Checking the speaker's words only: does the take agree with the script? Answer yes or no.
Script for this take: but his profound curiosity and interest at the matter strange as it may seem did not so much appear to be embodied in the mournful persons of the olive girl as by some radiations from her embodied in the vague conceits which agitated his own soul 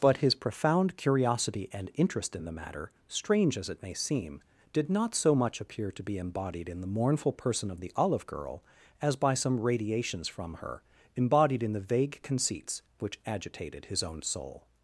no